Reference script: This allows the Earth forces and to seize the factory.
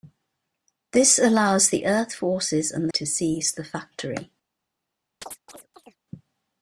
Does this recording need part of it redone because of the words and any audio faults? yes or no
yes